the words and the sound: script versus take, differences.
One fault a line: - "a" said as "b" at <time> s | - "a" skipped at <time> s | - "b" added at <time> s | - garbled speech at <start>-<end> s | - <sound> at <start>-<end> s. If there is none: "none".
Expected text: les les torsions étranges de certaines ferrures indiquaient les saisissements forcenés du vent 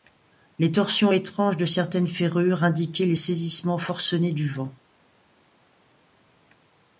- "les" skipped at 0.7 s